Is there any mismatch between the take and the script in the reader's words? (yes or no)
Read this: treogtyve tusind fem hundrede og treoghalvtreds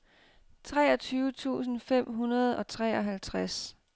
no